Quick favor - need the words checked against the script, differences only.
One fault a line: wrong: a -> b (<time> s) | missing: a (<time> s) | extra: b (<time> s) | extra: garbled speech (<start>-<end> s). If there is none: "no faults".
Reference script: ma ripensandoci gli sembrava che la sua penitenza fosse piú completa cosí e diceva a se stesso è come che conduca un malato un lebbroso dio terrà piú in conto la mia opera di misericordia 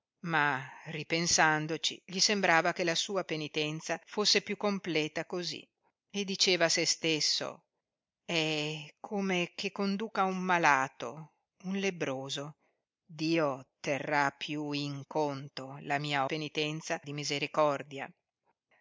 wrong: opera -> penitenza (16.2 s)